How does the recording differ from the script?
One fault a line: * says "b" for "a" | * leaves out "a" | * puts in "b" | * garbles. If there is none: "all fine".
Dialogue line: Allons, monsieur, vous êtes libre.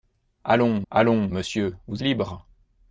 * puts in "allons"
* leaves out "êtes"